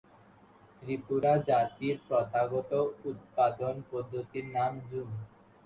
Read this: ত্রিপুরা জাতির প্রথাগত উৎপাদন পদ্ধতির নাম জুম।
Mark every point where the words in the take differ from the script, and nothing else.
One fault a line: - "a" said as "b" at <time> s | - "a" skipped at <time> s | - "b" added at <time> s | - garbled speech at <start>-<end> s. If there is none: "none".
none